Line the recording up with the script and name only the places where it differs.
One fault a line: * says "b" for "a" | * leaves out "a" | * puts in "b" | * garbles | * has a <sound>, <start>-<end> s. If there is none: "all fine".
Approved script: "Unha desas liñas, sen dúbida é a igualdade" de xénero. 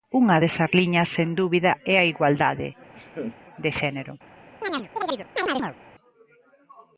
* has a laugh, 2.9-3.4 s
* has a chirp, 4.6-5.8 s